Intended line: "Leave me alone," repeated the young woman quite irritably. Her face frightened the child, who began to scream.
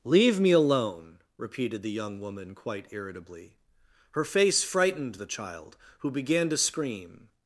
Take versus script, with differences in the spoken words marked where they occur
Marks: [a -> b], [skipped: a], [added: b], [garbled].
"Leave me alone," repeated the young woman quite irritably. Her face frightened the child, who began to scream.